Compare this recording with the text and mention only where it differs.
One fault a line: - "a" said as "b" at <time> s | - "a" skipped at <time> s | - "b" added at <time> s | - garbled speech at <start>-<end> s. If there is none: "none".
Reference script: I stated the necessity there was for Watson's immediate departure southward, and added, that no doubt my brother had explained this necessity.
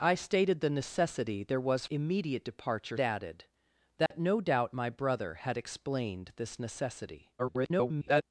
- "for Watson's" skipped at 1.9 s
- "southward and" skipped at 3.0 s
- garbled speech at 7.4-8.2 s